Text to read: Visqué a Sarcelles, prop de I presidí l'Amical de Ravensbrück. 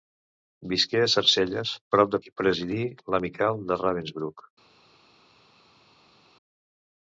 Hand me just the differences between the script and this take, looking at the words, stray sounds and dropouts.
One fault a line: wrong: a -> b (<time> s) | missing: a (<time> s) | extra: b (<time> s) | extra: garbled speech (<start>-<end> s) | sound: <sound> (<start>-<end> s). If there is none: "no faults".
no faults